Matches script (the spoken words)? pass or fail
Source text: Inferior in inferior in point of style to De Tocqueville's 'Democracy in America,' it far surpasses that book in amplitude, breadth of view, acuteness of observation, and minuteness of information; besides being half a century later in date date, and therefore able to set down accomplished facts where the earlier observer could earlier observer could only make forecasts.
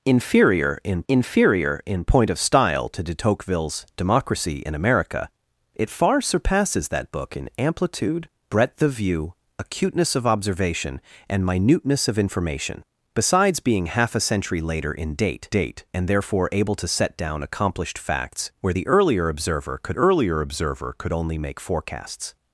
pass